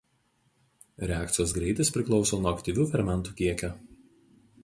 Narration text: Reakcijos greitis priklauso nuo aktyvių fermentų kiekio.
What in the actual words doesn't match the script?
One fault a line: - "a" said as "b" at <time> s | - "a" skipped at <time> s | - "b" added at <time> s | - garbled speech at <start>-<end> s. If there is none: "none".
none